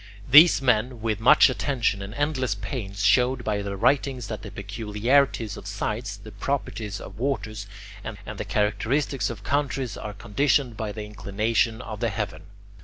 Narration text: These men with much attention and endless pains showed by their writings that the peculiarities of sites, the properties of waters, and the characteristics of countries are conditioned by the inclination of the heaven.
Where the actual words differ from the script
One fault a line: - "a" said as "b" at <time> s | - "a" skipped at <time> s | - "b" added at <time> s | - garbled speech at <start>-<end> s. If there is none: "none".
- "and" added at 8.2 s